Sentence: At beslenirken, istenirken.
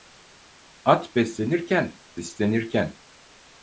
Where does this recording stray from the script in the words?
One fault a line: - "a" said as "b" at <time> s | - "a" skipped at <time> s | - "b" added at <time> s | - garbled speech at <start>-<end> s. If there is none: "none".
none